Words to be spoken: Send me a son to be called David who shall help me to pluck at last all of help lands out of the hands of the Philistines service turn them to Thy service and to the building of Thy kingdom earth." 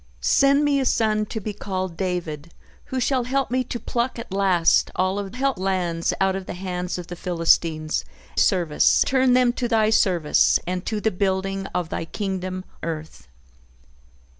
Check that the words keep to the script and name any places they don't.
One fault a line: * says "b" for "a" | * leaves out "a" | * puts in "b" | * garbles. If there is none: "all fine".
all fine